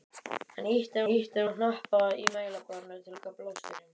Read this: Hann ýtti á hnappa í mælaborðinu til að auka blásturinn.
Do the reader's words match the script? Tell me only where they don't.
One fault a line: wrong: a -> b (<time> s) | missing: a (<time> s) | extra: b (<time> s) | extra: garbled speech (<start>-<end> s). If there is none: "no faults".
extra: ýtti (1.1 s)
missing: að (3.2 s)